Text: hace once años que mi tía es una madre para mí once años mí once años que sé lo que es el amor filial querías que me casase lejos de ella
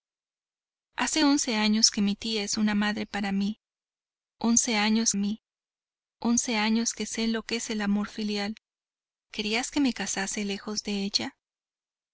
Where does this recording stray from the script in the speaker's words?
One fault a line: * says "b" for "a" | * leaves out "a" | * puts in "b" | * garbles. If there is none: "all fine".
all fine